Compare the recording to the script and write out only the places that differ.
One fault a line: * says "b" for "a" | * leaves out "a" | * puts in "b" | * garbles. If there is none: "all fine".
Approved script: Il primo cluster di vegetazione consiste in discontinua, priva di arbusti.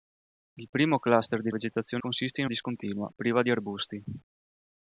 all fine